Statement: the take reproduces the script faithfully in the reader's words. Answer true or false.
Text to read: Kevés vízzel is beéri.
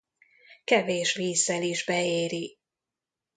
true